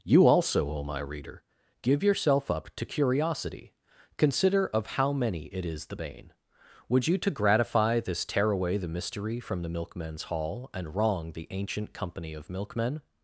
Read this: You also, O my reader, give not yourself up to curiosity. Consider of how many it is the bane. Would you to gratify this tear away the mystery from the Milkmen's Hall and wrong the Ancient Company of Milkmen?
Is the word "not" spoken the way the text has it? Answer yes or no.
no